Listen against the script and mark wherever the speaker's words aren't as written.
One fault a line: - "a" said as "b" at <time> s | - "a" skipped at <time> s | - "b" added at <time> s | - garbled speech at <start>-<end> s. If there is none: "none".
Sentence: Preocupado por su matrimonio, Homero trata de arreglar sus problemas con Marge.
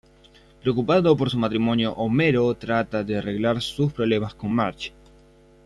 none